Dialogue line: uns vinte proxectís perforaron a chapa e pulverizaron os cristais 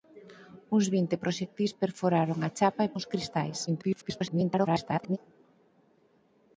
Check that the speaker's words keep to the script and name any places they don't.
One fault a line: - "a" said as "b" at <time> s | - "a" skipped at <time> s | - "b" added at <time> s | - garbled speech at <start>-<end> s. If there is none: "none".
- "pulverizaron" skipped at 2.9 s
- garbled speech at 3.7-5.2 s